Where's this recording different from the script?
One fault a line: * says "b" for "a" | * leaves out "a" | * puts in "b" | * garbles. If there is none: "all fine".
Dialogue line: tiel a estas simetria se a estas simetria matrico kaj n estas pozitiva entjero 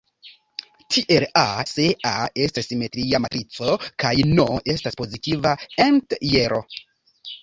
* leaves out "estas simetria"